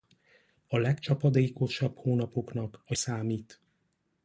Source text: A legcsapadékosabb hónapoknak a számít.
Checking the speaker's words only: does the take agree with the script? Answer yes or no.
yes